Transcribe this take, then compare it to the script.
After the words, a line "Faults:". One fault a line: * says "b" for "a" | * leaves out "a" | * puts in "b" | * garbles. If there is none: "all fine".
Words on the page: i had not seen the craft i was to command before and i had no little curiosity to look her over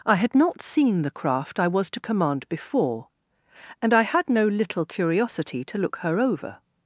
i had not seen the craft i was to command before and i had no little curiosity to look her over
Faults:
all fine